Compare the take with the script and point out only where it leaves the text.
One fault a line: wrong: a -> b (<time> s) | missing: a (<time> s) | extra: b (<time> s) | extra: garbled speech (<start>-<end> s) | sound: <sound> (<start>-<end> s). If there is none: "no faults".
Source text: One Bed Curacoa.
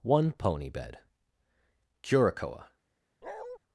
extra: pony (0.3 s)
sound: bark (3.2-3.6 s)